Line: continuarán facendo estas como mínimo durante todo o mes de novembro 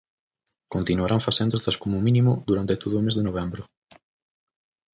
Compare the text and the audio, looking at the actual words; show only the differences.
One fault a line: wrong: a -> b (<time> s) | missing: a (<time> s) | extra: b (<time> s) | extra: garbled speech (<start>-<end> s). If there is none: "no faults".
no faults